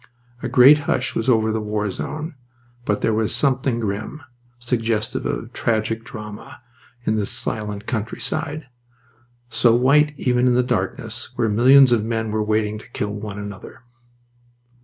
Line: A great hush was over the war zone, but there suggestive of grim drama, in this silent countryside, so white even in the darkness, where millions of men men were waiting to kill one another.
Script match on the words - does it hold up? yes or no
no